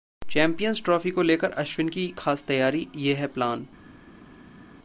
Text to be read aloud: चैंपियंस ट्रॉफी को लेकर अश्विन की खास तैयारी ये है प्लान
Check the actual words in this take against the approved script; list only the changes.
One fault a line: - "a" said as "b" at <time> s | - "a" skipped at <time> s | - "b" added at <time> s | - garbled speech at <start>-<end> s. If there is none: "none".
none